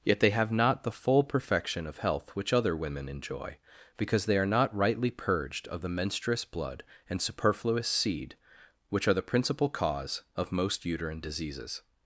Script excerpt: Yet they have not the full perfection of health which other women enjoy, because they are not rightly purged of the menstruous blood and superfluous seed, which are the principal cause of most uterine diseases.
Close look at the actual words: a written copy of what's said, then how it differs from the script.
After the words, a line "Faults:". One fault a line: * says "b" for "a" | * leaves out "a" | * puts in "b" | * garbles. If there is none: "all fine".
Yet they have not the full perfection of health which other women enjoy, because they are not rightly purged of the menstruous blood and superfluous seed, which are the principal cause of most uterine diseases.
Faults:
all fine